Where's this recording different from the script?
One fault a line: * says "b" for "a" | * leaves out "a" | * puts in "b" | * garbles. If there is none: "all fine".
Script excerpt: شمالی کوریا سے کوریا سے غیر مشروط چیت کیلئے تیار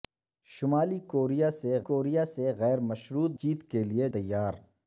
all fine